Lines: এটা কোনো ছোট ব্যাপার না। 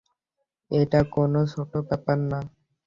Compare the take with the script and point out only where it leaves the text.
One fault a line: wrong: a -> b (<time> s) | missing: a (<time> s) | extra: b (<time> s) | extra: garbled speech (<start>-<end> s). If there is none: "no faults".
no faults